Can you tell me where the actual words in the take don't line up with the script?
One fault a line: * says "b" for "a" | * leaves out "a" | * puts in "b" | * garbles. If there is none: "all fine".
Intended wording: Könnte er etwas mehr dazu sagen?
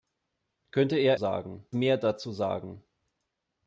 * says "sagen" for "etwas"